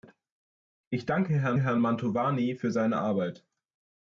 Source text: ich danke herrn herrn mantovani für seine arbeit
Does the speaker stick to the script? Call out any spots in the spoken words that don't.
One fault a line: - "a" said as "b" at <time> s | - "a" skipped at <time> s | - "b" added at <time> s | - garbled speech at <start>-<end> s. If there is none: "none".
none